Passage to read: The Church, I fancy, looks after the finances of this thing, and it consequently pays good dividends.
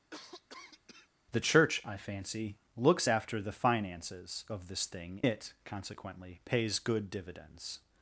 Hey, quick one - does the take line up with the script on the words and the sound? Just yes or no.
no